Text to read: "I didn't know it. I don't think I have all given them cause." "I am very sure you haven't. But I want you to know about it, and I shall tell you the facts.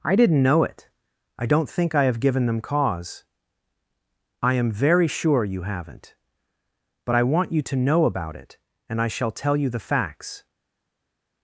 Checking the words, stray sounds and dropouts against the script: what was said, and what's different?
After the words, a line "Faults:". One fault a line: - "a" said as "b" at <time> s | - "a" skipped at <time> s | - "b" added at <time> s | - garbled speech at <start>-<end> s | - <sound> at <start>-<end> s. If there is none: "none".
"I didn't know it. I don't think I have given them cause." "I am very sure you haven't. But I want you to know about it, and I shall tell you the facts.
Faults:
- "all" skipped at 2.2 s